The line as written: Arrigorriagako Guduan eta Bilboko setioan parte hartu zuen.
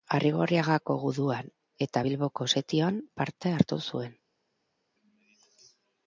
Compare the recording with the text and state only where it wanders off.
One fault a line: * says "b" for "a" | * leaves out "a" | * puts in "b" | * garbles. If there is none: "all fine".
all fine